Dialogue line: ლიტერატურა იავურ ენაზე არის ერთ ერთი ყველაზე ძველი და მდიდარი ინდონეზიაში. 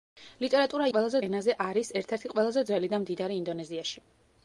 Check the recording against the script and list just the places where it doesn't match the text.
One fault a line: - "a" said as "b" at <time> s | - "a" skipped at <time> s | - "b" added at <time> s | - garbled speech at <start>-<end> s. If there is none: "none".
- "იავურ" said as "ყველაზე" at 0.9 s